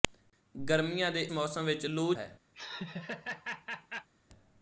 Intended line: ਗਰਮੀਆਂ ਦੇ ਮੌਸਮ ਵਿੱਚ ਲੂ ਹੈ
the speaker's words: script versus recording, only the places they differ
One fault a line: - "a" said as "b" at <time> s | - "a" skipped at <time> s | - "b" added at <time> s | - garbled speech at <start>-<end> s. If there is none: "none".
none